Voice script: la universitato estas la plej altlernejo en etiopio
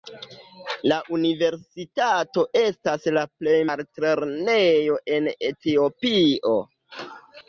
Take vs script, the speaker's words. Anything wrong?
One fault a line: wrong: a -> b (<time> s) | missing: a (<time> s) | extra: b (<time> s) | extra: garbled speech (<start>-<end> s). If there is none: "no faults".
no faults